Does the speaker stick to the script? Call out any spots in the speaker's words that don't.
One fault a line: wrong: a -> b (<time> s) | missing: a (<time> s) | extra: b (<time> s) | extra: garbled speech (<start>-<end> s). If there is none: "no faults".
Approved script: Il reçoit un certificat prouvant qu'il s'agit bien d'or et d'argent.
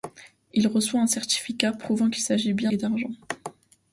missing: d'or (2.7 s)